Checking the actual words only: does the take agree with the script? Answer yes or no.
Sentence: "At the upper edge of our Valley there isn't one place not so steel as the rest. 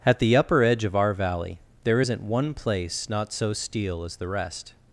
yes